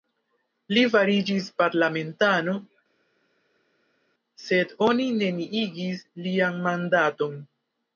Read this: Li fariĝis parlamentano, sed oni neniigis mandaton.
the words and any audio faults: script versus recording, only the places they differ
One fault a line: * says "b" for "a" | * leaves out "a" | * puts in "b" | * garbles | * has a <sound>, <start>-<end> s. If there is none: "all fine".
* puts in "lian"